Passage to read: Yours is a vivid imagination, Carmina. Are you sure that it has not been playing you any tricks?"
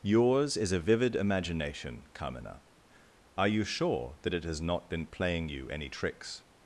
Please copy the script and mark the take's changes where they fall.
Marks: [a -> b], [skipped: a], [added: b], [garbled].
Yours is a vivid imagination, Carmina. Are you sure that it has not been playing you any tricks?"